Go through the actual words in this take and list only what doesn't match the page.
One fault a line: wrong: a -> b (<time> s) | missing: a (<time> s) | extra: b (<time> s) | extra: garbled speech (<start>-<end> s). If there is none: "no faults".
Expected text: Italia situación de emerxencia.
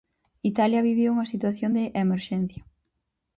extra: vive unha (0.9 s)